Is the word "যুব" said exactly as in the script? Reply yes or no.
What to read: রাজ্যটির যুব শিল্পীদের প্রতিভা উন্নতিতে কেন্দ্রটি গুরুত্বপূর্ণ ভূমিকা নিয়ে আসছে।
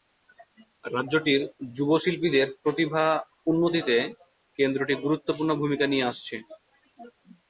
yes